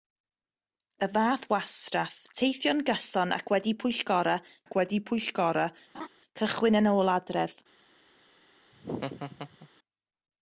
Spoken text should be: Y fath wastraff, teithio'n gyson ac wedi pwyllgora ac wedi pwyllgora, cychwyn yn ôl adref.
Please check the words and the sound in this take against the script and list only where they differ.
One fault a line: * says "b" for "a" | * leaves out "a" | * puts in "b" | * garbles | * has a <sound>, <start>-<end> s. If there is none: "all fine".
* has a laugh, 5.9-6.1 s
* has a laugh, 8.7-9.7 s